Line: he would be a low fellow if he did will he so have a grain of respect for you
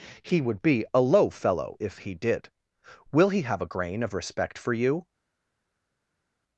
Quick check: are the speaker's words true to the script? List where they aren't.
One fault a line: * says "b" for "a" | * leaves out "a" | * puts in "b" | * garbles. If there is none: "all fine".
* leaves out "so"